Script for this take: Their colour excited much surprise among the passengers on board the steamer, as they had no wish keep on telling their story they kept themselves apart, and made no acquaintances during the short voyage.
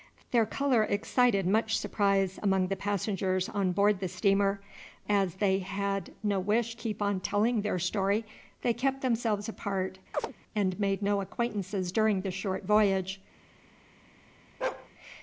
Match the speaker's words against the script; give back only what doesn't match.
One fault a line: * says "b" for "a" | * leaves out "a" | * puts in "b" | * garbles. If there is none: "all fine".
all fine